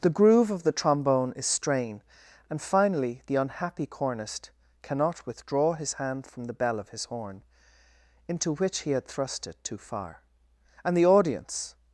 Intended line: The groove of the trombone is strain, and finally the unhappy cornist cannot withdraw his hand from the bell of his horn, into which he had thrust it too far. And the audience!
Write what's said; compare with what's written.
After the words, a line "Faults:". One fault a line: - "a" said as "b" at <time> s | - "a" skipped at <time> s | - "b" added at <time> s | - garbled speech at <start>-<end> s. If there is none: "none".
The groove of the trombone is strain, and finally the unhappy cornist cannot withdraw his hand from the bell of his horn, into which he had thrust it too far. And the audience!
Faults:
none